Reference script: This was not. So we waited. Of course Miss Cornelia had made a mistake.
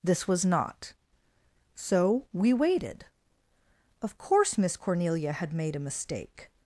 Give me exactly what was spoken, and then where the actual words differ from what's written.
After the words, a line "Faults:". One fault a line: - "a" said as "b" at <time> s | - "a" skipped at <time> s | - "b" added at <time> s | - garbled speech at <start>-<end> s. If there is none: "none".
This was not. So we waited. Of course Miss Cornelia had made a mistake.
Faults:
none